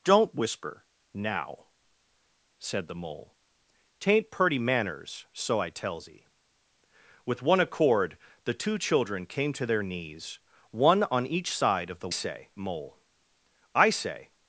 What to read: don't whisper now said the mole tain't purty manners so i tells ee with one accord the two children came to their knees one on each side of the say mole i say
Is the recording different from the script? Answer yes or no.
no